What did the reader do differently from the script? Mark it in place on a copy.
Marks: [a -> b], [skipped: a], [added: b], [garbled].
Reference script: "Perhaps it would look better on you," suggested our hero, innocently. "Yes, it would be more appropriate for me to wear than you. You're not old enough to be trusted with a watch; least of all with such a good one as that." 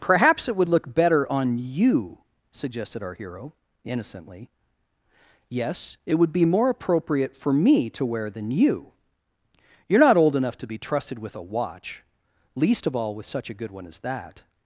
"Perhaps it would look better on you," suggested our hero, innocently. "Yes, it would be more appropriate for me to wear than you. You're not old enough to be trusted with a watch; least of all with such a good one as that."